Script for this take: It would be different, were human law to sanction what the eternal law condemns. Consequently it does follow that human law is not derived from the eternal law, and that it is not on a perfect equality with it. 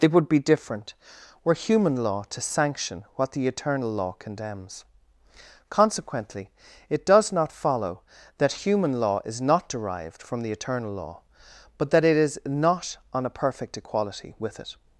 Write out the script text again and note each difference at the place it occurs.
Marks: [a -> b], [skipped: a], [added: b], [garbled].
It would be different, were human law to sanction what the eternal law condemns. Consequently it does [added: not] follow that human law is not derived from the eternal law, [and -> but] that it is not on a perfect equality with it.